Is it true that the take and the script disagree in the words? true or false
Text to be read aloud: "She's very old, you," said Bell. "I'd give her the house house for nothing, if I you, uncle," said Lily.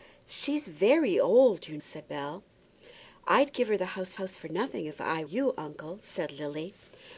false